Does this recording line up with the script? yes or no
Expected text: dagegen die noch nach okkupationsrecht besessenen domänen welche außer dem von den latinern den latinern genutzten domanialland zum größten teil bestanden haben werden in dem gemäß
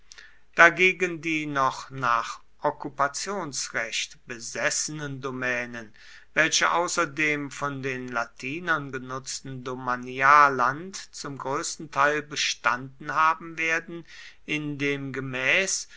no